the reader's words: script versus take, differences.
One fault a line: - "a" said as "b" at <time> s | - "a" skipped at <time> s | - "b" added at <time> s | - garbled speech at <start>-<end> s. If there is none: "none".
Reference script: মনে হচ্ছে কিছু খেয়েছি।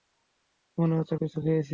none